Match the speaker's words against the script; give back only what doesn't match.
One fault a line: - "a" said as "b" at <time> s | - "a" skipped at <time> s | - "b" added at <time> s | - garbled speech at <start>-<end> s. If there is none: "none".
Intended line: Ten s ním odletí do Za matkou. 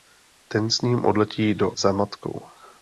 none